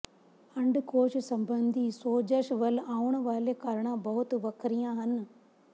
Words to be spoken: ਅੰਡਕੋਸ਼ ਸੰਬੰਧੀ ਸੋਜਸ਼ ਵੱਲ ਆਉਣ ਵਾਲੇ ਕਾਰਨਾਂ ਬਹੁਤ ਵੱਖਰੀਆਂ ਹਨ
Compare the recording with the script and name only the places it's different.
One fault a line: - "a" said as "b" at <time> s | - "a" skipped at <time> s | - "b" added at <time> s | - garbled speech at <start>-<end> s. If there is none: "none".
none